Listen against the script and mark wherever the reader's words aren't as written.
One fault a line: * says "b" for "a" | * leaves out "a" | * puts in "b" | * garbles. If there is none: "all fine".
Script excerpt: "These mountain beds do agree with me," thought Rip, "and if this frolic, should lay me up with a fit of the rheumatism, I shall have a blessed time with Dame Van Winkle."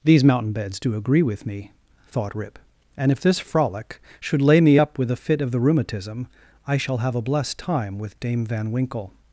all fine